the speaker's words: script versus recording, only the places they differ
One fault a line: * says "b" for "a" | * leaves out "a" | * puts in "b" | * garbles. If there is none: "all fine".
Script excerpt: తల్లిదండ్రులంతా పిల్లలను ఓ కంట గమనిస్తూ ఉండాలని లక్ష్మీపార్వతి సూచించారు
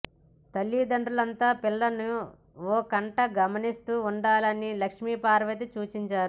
all fine